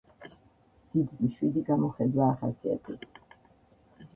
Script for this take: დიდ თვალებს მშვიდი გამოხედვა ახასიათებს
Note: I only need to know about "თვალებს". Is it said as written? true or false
false